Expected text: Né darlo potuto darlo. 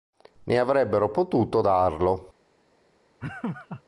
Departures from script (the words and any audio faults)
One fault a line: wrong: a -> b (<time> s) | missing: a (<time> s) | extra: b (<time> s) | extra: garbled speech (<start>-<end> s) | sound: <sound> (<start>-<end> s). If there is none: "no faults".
wrong: darlo -> avrebbero (0.6 s)
sound: laugh (3.2-3.8 s)